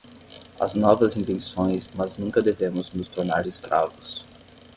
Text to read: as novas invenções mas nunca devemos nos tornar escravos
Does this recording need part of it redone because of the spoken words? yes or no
no